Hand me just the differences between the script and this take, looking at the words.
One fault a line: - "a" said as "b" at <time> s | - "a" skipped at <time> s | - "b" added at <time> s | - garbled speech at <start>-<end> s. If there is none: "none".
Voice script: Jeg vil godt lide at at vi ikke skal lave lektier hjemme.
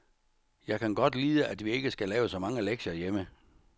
- "vil" said as "kan" at 0.8 s
- "at" skipped at 1.6 s
- "så mange" added at 2.3 s